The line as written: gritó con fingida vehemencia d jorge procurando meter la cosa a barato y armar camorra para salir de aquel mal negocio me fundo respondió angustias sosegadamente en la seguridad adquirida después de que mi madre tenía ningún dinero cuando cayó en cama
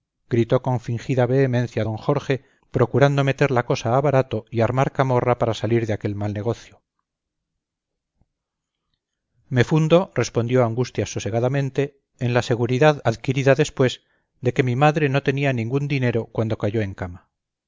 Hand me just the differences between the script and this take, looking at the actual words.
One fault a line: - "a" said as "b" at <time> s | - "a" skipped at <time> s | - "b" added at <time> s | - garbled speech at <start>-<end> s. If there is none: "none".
- "no" added at 15.1 s